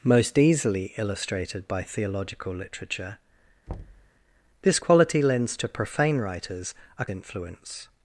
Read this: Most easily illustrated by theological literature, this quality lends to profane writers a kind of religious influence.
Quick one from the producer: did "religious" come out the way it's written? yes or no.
no